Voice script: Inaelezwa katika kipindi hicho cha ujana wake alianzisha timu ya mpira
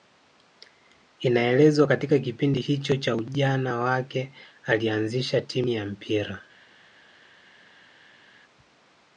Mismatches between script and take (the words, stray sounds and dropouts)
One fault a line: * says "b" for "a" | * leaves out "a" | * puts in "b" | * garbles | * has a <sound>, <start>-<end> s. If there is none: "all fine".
all fine